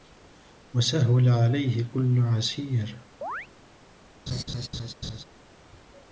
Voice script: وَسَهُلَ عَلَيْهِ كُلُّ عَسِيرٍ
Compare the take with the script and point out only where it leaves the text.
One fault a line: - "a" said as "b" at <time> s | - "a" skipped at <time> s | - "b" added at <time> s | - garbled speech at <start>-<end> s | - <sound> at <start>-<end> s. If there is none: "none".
- chirp at 3.2-3.5 s
- laugh at 4.3-5.2 s